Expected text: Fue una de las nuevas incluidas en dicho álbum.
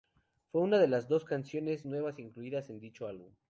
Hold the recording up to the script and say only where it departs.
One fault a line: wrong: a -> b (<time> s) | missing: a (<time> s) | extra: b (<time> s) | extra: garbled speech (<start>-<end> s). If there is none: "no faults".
extra: dos canciones (1.1 s)